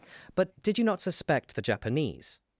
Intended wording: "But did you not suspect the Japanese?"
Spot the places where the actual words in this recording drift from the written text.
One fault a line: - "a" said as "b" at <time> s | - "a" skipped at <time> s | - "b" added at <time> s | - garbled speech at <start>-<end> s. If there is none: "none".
none